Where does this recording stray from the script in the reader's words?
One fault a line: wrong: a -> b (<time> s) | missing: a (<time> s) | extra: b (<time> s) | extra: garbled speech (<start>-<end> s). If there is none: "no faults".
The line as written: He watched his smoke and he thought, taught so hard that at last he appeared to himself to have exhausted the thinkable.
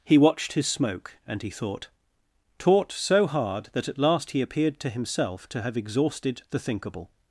no faults